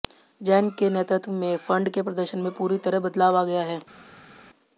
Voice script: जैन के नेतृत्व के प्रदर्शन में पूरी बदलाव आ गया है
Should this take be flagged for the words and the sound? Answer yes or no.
yes